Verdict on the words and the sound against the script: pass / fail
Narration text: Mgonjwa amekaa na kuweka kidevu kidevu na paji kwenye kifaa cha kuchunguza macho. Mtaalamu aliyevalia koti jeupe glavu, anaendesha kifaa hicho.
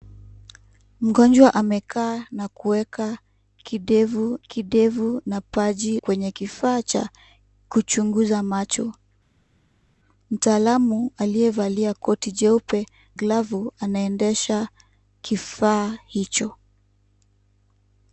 pass